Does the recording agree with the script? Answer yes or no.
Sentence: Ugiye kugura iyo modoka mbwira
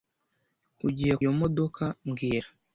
no